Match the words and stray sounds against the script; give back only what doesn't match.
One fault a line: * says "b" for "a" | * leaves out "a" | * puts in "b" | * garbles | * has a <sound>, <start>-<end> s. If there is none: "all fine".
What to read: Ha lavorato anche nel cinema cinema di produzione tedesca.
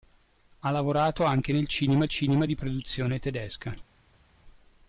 all fine